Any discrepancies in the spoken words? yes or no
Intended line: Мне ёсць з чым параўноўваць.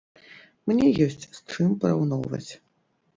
no